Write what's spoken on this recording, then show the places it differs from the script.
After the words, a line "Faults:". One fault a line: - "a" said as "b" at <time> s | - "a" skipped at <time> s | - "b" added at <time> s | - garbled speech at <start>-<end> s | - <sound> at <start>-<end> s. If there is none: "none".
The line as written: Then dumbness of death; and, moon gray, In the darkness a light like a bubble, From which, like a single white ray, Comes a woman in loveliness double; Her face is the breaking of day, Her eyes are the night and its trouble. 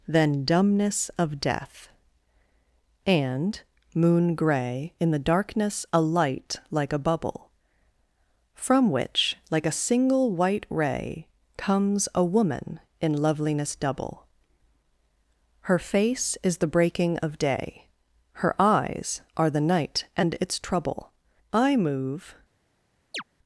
Then dumbness of death; and, moon gray, In the darkness a light like a bubble, From which, like a single white ray, Comes a woman in loveliness double; Her face is the breaking of day, Her eyes are the night and its trouble. I move
Faults:
- "I move" added at 21.5 s
- chirp at 23.1-23.2 s